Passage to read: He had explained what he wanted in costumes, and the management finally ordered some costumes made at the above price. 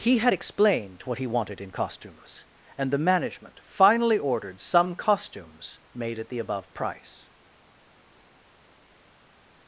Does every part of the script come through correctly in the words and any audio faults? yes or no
yes